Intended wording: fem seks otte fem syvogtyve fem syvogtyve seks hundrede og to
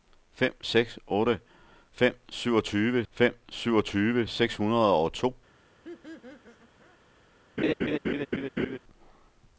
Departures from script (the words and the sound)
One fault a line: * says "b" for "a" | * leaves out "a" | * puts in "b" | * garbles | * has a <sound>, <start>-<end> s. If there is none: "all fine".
* has a laugh, 5.8-7.0 s
* has a laugh, 7.6-8.8 s